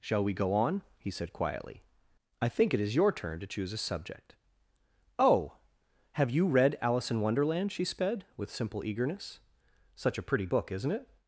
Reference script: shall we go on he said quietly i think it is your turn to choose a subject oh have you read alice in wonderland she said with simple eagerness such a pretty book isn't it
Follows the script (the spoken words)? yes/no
no